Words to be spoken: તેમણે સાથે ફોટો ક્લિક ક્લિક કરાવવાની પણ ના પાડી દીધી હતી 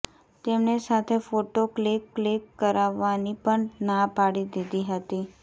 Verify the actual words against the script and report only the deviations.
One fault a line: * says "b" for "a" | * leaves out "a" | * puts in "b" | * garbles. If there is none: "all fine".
all fine